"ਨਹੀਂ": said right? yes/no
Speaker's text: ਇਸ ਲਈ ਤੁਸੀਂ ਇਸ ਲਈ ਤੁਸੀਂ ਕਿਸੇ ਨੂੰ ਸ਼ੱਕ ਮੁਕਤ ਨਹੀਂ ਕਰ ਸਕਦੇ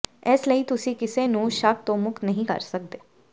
yes